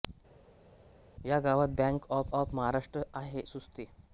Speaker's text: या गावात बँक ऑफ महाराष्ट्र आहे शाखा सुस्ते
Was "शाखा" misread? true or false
true